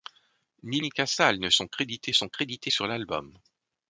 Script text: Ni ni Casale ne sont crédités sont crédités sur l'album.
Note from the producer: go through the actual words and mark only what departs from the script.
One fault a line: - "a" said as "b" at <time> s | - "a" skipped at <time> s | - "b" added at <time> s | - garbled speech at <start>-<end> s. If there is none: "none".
none